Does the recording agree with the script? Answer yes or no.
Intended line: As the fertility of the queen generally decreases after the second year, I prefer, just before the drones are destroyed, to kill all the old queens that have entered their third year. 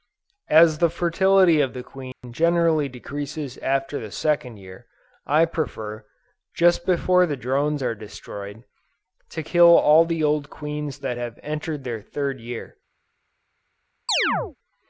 yes